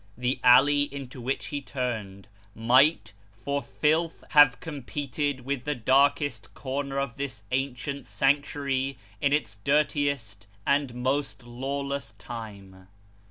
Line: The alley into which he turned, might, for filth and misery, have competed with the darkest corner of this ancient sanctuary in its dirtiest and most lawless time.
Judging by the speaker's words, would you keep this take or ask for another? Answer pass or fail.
fail